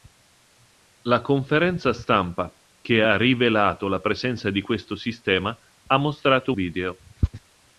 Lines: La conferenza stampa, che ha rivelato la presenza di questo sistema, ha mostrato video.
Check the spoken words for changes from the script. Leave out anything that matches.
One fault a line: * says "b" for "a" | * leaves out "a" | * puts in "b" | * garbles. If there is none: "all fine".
all fine